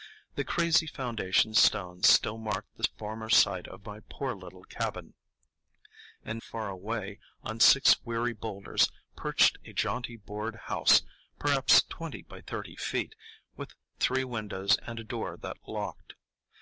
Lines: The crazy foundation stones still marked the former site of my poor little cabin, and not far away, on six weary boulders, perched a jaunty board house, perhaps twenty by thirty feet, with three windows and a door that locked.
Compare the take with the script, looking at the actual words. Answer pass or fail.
fail